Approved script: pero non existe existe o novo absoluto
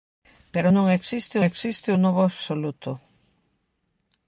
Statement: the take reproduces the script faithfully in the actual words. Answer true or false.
true